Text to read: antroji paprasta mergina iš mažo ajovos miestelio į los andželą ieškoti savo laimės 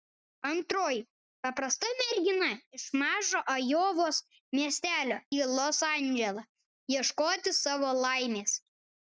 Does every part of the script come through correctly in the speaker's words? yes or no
yes